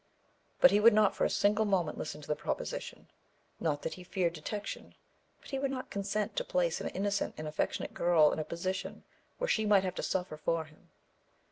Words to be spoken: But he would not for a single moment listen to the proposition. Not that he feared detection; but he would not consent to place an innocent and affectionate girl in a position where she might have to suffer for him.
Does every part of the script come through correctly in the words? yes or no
yes